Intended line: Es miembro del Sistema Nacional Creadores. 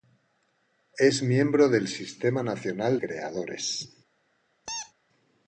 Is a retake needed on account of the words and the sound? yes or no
yes